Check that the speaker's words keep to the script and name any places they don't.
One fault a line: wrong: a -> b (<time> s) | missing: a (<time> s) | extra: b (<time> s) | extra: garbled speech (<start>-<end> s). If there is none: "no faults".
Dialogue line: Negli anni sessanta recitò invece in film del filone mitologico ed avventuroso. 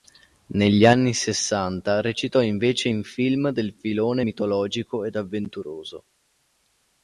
no faults